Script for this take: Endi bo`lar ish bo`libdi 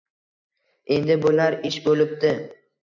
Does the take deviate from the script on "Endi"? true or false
false